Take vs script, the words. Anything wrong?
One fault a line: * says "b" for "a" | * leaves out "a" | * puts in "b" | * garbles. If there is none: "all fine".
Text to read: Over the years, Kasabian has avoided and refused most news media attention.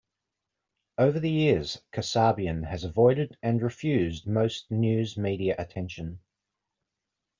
all fine